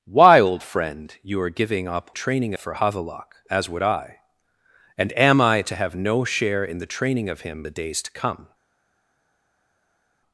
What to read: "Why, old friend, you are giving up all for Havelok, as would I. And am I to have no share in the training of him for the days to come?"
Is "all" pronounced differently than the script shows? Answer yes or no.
yes